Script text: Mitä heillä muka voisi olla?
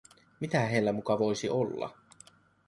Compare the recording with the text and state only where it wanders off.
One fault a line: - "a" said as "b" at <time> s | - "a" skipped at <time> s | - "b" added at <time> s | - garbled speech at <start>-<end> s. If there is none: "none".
none